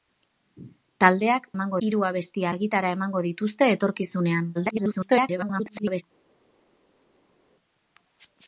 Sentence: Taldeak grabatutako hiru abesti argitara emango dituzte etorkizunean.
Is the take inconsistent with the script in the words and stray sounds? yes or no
yes